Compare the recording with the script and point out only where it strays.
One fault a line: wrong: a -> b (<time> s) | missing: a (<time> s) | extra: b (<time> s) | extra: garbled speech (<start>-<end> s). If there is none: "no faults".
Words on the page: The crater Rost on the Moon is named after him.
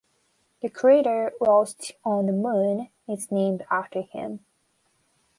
no faults